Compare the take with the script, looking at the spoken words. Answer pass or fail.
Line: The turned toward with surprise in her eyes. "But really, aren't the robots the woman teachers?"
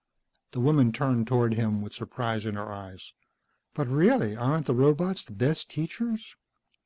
fail